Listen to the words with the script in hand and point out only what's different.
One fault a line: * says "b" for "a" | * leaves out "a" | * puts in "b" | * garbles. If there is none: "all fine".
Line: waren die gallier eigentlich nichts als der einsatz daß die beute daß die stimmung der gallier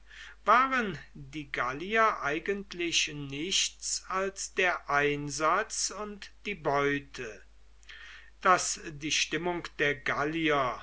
* says "und" for "daß"